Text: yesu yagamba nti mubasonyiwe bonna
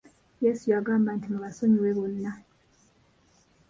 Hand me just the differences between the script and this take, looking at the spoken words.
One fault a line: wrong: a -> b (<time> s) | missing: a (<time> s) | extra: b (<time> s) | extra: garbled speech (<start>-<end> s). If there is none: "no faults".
no faults